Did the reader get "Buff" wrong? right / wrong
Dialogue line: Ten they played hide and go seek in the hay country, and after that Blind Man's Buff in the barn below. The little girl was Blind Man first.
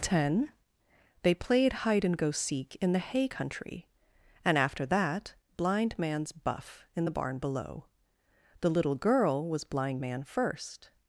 right